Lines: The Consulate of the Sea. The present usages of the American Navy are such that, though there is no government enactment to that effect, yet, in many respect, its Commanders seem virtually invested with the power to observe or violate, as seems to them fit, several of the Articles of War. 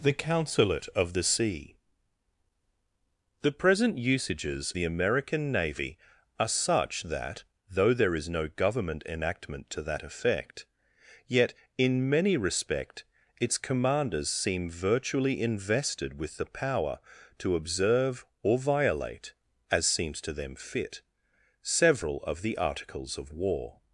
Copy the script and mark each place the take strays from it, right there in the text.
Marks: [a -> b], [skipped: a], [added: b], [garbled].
The Consulate of the Sea. The present usages [skipped: of] the American Navy are such that, though there is no government enactment to that effect, yet, in many respect, its Commanders seem virtually invested with the power to observe or violate, as seems to them fit, several of the Articles of War.